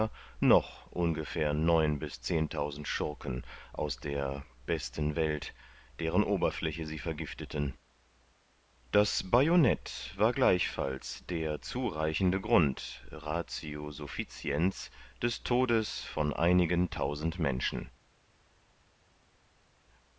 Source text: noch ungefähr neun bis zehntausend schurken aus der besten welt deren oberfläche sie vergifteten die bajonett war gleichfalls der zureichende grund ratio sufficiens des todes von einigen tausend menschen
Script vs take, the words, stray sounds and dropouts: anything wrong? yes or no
yes